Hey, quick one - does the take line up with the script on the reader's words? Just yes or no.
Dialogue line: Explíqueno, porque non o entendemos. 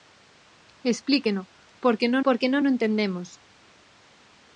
no